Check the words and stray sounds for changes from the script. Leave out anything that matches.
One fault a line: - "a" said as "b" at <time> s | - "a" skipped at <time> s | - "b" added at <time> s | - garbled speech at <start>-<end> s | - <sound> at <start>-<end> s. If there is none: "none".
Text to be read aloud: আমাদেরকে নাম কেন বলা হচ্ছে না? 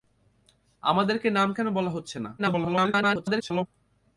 - garbled speech at 2.4-3.7 s